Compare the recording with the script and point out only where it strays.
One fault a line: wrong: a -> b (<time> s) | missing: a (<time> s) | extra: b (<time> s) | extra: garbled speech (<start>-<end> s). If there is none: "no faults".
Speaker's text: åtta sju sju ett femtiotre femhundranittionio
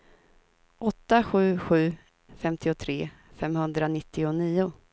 missing: ett (1.9 s)